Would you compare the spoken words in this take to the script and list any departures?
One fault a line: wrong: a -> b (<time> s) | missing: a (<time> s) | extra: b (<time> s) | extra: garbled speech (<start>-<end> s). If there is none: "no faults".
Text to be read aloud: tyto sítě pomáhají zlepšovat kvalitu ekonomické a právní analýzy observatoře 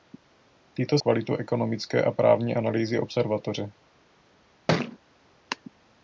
missing: sítě pomáhají zlepšovat (1.0 s)